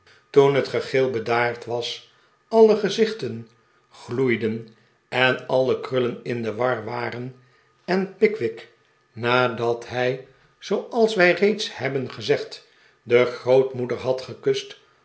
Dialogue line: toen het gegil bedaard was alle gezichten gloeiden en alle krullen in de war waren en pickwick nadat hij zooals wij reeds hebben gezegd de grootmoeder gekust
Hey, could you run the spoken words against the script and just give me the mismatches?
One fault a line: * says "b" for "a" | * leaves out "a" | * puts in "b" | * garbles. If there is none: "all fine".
* puts in "had"